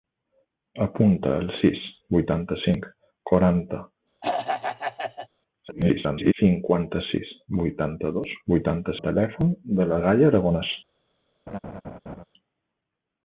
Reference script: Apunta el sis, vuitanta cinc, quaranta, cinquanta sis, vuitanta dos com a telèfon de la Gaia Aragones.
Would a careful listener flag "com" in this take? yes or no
yes